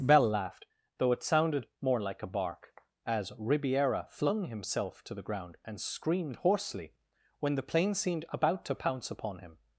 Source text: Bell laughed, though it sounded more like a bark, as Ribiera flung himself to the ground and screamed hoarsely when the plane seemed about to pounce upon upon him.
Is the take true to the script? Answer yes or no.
no